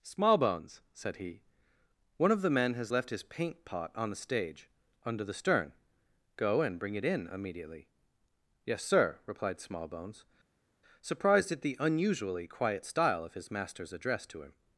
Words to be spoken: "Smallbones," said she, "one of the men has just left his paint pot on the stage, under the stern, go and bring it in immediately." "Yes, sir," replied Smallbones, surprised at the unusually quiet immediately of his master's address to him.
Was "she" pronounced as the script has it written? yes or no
no